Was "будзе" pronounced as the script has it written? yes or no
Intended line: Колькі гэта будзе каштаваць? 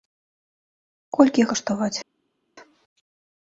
no